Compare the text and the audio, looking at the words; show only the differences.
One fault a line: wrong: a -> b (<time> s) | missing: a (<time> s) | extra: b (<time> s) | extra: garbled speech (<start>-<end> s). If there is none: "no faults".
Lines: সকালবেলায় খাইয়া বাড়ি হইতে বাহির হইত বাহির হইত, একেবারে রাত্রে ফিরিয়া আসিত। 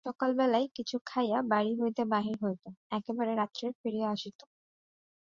extra: কিছু (0.8 s)
missing: বাহির হইত (2.6 s)